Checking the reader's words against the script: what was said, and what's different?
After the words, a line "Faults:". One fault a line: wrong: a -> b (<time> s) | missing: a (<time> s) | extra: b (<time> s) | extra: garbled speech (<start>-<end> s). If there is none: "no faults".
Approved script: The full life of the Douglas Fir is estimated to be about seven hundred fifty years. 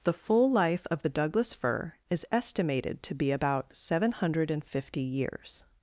The full life of the Douglas Fir is estimated to be about seven hundred fifty years.
Faults:
no faults